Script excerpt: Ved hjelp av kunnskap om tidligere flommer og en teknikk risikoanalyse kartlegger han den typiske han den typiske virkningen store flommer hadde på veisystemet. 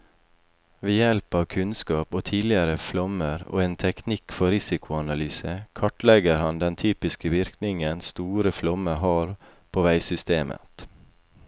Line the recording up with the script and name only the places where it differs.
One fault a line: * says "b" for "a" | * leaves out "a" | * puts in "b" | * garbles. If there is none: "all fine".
* puts in "for"
* leaves out "han den typiske"
* says "har" for "hadde"